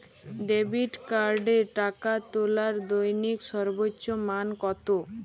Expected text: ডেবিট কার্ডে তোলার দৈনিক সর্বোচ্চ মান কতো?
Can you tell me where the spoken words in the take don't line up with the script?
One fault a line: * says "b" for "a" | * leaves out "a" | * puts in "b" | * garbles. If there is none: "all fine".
* puts in "টাকা"